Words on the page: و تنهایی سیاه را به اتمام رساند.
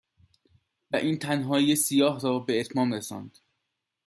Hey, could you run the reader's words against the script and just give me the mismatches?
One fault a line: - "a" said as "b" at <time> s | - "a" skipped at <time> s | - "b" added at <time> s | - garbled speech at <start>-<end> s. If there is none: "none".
- "این" added at 0.9 s